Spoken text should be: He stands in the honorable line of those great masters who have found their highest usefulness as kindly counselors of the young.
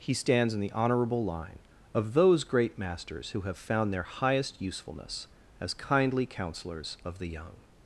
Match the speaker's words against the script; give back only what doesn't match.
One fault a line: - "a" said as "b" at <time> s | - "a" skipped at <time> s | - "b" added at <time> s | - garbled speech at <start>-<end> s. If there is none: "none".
none